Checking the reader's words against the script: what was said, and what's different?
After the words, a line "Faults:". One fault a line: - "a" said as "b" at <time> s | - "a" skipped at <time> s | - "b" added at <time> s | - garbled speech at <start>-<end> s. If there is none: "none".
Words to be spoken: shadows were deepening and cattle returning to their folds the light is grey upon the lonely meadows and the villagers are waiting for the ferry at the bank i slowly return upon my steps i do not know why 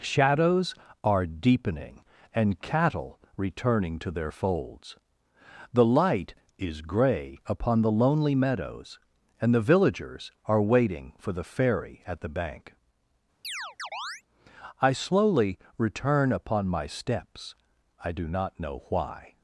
shadows are deepening and cattle returning to their folds the light is grey upon the lonely meadows and the villagers are waiting for the ferry at the bank i slowly return upon my steps i do not know why
Faults:
- "were" said as "are" at 1.0 s